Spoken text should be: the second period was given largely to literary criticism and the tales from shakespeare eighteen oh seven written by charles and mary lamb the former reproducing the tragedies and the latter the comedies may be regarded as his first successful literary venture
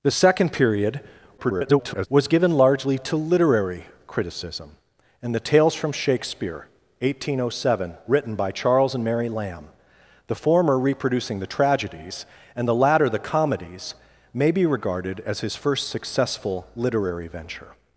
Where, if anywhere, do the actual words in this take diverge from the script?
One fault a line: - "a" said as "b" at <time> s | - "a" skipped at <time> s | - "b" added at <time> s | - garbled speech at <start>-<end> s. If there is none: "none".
- garbled speech at 1.4-2.1 s